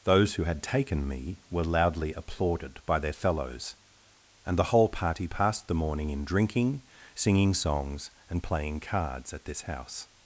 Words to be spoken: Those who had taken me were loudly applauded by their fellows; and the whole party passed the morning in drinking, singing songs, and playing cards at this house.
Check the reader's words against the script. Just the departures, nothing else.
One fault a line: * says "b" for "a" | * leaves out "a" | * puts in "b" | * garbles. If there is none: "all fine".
all fine